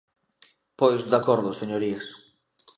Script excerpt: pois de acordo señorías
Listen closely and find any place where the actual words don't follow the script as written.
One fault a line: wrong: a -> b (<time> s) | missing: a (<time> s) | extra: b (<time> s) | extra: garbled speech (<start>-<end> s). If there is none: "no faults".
no faults